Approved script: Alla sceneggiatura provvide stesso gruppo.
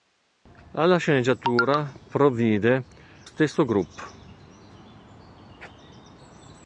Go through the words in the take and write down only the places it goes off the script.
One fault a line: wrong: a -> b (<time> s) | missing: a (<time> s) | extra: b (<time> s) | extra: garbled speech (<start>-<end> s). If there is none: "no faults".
no faults